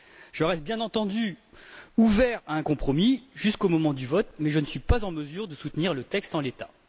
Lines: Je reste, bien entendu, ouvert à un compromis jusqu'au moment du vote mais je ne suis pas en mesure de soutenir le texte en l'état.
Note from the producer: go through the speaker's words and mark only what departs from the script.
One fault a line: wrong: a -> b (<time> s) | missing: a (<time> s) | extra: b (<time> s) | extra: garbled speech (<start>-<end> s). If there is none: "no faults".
no faults